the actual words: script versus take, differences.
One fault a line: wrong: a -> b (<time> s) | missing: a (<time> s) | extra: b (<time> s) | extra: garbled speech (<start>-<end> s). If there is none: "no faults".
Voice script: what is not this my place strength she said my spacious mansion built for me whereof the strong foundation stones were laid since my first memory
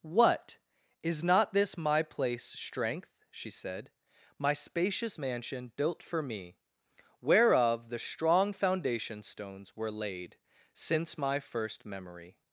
no faults